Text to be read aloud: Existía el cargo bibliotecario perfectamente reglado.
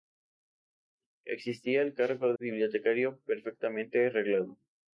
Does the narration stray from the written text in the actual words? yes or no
no